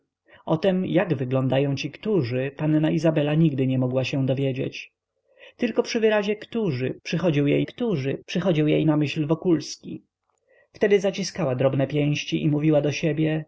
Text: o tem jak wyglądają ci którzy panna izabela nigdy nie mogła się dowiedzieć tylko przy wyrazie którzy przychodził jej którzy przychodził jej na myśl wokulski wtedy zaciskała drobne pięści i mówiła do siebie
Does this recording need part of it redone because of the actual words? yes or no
no